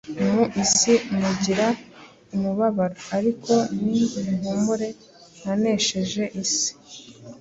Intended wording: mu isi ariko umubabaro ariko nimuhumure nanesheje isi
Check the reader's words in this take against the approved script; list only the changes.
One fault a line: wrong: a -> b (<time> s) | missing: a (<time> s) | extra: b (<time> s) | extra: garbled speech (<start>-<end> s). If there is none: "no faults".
wrong: ariko -> mugira (1.2 s)